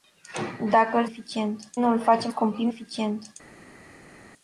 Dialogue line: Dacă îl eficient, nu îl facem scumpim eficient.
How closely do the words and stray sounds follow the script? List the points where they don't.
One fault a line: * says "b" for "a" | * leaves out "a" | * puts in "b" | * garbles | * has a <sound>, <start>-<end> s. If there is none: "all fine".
all fine